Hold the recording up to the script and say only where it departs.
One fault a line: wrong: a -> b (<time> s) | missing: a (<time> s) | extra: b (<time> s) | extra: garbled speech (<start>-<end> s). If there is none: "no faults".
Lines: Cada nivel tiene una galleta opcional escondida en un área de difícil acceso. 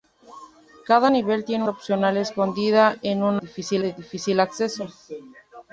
missing: una galleta (1.6 s)
wrong: área -> difícil (3.4 s)